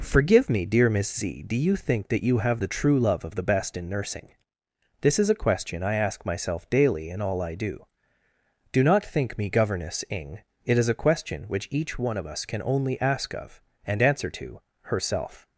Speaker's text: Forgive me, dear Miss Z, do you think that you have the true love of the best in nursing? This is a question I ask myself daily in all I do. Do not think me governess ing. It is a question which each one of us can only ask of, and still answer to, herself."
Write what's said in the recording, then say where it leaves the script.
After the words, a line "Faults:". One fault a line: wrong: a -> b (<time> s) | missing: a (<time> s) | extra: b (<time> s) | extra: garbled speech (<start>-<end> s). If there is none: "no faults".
Forgive me, dear Miss Z, do you think that you have the true love of the best in nursing? This is a question I ask myself daily in all I do. Do not think me governess ing. It is a question which each one of us can only ask of, and answer to, herself."
Faults:
missing: still (14.0 s)